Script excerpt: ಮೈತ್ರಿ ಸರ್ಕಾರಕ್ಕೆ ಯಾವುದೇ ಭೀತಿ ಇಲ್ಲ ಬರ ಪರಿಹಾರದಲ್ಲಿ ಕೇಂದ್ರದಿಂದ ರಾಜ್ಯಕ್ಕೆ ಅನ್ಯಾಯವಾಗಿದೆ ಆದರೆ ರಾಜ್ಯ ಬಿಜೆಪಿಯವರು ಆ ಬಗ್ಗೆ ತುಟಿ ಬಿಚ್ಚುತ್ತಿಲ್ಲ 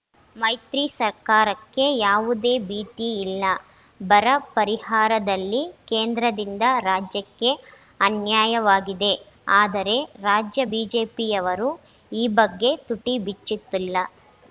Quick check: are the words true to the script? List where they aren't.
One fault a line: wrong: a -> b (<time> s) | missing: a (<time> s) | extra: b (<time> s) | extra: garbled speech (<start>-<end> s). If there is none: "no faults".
wrong: ಆ -> ಈ (12.1 s)